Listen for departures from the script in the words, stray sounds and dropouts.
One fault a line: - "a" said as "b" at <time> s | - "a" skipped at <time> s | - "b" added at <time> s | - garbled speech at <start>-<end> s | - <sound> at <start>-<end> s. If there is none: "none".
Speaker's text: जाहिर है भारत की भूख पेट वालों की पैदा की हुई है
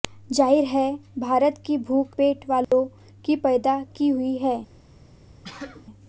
- dropout at 2.6-2.7 s
- sneeze at 5.4-5.9 s